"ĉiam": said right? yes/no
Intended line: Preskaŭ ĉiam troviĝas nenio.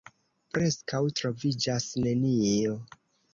no